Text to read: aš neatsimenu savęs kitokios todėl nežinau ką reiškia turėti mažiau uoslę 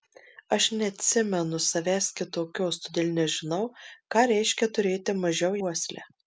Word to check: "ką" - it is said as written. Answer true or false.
true